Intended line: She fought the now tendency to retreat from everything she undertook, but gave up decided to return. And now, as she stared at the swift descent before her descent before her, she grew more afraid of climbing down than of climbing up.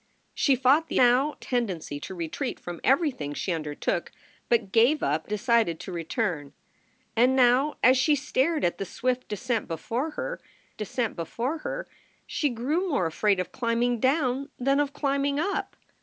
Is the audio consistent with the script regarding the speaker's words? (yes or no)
yes